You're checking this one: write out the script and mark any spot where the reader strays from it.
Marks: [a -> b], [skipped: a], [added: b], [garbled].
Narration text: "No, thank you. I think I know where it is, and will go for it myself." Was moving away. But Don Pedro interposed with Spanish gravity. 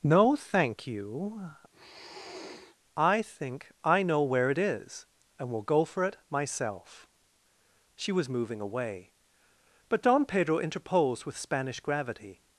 "No, thank you. I think I know where it is, and will go for it myself." [added: She] Was moving away. But Don Pedro interposed with Spanish gravity.